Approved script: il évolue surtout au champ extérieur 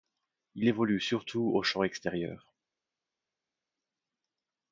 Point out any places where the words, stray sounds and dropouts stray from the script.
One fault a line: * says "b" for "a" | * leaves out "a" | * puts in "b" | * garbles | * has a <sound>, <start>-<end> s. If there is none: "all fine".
all fine